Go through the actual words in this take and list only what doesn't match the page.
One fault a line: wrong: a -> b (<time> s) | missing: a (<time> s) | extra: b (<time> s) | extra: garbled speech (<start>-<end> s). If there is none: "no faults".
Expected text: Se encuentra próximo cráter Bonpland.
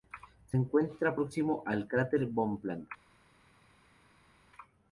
extra: al (1.7 s)